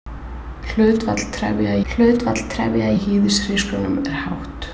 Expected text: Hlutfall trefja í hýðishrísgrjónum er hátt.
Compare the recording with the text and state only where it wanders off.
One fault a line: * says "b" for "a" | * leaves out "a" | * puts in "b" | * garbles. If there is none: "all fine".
* puts in "hlutfall trefja"